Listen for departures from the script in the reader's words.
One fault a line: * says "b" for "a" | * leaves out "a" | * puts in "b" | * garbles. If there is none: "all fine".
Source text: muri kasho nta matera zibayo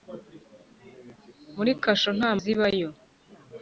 * leaves out "matera"